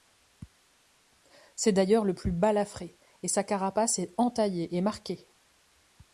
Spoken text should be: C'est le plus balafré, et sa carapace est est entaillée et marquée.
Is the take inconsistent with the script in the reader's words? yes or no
yes